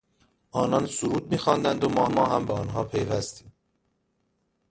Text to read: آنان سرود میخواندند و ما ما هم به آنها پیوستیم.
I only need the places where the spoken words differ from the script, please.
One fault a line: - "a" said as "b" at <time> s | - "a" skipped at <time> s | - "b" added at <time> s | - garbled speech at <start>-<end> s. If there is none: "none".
none